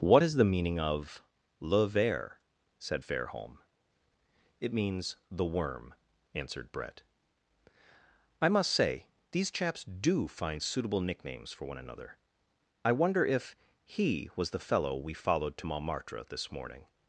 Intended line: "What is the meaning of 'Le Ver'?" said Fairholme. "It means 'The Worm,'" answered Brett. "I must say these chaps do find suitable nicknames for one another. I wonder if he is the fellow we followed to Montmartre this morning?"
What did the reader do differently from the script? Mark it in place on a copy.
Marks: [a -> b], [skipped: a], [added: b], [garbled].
"What is the meaning of 'Le Ver'?" said Fairholme. "It means 'The Worm,'" answered Brett. "I must say these chaps do find suitable nicknames for one another. I wonder if he [is -> was] the fellow we followed to Montmartre this morning?"